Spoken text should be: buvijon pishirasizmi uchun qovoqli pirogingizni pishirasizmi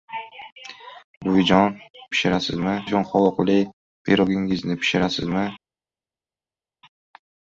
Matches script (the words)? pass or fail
pass